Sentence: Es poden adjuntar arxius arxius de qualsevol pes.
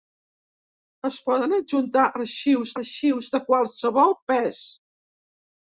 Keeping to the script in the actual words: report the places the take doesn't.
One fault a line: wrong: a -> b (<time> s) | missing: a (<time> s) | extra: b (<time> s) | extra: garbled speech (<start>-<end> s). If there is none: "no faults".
no faults